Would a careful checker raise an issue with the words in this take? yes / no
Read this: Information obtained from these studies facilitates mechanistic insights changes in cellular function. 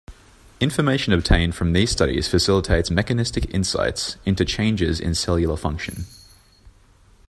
yes